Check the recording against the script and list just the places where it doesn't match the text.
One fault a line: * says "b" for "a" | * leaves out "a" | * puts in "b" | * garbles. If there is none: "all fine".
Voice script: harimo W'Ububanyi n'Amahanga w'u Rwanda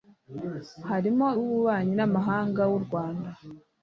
all fine